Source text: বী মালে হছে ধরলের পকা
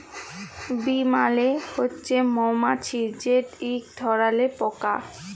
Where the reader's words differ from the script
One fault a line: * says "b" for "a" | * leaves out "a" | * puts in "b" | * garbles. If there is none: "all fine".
* puts in "মমাছি যেট ইক"